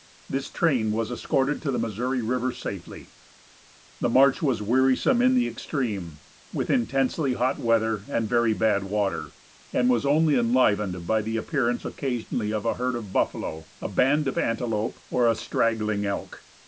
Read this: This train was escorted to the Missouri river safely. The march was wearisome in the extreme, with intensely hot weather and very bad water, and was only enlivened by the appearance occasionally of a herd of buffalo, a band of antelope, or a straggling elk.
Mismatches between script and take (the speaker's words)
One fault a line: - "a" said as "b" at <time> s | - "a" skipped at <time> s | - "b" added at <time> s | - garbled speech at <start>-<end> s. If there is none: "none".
none